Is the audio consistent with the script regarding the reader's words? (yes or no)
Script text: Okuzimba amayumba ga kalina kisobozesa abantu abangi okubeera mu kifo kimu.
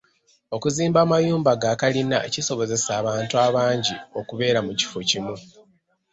yes